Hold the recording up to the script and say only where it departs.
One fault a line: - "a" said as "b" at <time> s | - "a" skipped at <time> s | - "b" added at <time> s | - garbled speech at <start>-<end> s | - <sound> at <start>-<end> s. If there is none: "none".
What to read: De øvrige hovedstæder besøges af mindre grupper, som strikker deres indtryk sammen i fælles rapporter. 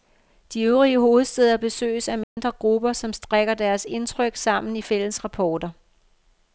- dropout at 2.2-2.4 s